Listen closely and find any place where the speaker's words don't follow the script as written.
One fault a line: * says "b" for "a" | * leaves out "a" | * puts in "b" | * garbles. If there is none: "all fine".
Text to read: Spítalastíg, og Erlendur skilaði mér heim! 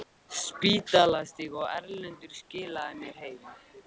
all fine